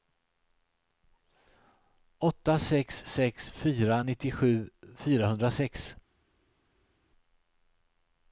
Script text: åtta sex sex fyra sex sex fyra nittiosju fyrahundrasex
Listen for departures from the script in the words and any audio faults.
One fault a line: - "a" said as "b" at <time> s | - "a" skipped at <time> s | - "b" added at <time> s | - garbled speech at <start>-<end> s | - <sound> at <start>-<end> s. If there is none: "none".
- "sex sex fyra" skipped at 4.0 s